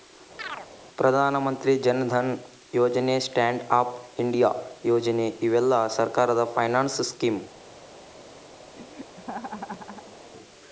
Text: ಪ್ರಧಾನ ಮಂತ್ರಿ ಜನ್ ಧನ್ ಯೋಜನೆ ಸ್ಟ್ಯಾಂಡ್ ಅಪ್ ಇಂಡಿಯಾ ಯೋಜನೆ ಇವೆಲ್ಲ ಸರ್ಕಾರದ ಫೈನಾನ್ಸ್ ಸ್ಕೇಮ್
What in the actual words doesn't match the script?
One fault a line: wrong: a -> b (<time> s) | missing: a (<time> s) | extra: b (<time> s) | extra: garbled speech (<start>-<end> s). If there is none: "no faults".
no faults